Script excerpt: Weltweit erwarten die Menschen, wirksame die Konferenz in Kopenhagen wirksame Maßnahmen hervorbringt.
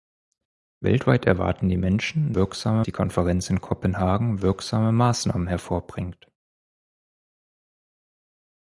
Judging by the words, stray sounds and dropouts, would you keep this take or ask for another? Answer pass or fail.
pass